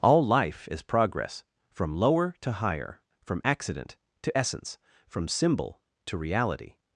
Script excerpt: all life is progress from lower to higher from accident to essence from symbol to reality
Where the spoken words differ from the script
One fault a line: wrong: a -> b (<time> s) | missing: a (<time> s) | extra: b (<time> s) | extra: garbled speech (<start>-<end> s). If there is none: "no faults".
no faults